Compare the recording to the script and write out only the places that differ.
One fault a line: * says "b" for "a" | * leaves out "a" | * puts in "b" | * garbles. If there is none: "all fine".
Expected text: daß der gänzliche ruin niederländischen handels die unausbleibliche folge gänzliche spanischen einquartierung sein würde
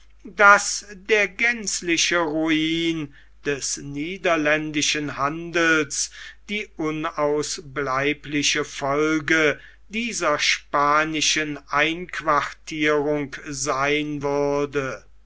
* puts in "des"
* says "dieser" for "gänzliche"